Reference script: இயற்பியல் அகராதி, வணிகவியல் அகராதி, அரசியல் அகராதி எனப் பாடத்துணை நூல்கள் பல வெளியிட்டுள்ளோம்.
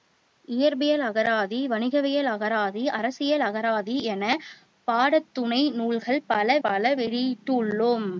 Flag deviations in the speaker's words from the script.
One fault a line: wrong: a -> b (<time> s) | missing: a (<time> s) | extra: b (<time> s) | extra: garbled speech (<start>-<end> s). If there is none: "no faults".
extra: பல (6.6 s)